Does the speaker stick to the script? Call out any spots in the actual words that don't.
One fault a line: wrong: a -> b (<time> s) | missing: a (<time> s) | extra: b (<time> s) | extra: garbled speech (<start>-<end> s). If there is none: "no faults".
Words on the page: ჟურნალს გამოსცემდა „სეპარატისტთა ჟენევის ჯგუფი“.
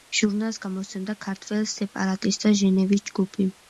extra: ქართველ (1.3 s)